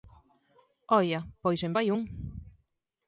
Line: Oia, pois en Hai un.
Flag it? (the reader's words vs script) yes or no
no